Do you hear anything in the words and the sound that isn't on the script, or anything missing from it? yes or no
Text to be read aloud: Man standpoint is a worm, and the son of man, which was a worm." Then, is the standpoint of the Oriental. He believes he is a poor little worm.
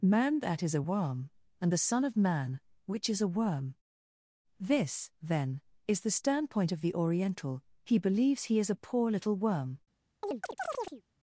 yes